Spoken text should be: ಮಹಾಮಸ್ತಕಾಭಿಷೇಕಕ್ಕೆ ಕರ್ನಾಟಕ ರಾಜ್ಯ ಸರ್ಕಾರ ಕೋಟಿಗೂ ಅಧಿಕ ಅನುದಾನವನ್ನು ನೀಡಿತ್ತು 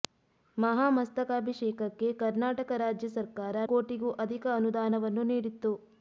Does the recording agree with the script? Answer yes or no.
yes